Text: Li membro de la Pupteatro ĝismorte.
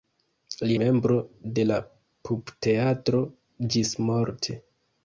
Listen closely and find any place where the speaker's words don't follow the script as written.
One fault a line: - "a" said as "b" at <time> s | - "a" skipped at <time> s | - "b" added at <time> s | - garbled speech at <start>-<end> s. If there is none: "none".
none